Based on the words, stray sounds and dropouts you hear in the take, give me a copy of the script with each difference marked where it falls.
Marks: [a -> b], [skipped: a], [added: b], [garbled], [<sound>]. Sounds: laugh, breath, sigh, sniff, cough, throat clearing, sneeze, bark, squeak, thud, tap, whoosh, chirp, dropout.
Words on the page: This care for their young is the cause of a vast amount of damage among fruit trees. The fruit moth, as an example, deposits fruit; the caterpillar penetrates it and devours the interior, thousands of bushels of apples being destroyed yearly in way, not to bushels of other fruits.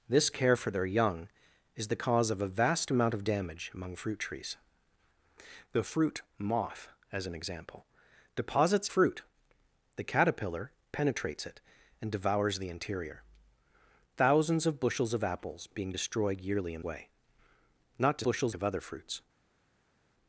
This care for their young is the cause of a vast amount of damage among fruit trees. The fruit moth, as an example, deposits fruit; the caterpillar penetrates it and devours the interior, thousands of bushels of apples being destroyed yearly in way, not to bushels of other fruits.